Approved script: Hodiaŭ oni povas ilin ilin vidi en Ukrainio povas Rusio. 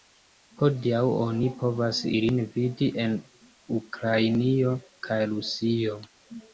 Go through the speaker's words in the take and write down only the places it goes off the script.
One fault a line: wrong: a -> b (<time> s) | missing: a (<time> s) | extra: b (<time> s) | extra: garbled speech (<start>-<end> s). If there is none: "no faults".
missing: ilin (2.4 s)
wrong: povas -> kaj (5.1 s)